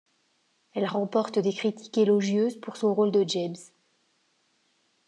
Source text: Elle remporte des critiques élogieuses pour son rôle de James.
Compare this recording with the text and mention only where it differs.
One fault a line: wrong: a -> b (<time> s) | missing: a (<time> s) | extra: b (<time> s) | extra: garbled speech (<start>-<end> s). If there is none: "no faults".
no faults